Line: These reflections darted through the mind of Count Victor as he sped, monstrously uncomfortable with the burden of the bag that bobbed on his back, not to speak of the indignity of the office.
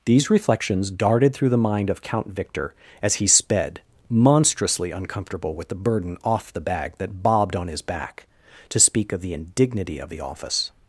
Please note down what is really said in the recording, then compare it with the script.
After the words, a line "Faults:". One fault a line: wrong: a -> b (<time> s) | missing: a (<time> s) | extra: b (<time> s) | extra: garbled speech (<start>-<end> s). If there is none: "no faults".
These reflections darted through the mind of Count Victor as he sped, monstrously uncomfortable with the burden off the bag that bobbed on his back, to speak of the indignity of the office.
Faults:
wrong: of -> off (6.2 s)
missing: not (8.2 s)